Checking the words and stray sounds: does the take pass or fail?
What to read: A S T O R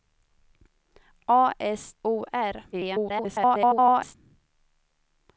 fail